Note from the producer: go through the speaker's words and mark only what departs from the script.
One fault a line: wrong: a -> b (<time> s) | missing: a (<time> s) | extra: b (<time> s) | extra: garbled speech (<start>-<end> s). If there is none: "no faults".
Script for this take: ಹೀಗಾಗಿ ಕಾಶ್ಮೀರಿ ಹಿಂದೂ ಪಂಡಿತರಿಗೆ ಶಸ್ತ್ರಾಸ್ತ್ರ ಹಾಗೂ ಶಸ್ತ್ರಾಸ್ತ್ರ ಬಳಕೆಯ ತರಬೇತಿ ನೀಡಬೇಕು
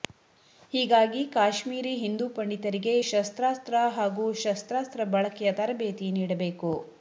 no faults